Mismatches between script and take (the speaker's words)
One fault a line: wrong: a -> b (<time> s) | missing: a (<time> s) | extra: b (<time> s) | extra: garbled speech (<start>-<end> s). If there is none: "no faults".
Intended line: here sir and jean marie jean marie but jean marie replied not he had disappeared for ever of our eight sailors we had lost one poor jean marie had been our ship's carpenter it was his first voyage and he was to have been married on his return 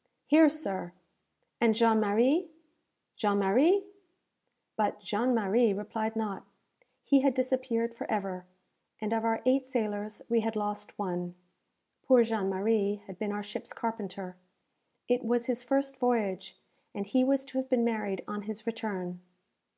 extra: and (9.0 s)